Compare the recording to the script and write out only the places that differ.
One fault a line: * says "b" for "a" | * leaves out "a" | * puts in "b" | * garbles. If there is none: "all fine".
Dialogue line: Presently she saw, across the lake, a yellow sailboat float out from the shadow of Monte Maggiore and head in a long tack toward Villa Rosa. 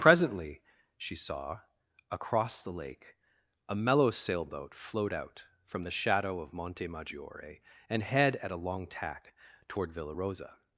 * says "mellow" for "yellow"
* says "at" for "in"